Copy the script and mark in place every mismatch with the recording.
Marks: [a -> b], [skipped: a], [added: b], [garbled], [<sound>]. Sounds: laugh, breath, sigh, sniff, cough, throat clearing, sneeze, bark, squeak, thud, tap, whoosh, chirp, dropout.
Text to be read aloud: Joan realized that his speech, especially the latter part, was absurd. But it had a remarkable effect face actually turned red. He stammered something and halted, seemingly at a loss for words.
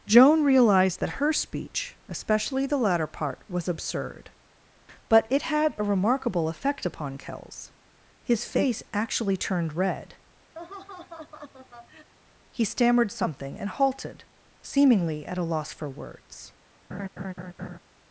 Joan realized that [his -> her] speech, especially the latter part, was absurd. But it had a remarkable effect [added: upon Kells His] face actually turned red. [laugh] He stammered something and halted, seemingly at a loss for words. [laugh]